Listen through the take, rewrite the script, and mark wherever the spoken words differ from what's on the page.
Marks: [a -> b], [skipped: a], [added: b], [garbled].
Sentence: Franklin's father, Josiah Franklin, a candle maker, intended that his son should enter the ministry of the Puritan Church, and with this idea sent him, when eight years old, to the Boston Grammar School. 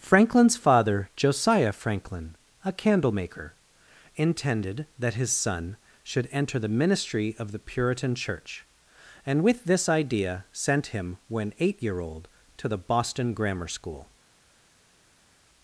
Franklin's father, Josiah Franklin, a candle maker, intended that his son should enter the ministry of the Puritan Church, and with this idea sent him, when eight [years -> year] old, to the Boston Grammar School.